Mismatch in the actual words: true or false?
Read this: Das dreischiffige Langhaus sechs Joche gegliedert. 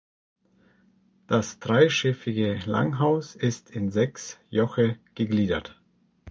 true